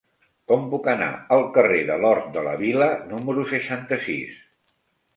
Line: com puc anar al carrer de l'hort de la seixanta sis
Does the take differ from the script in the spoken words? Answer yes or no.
yes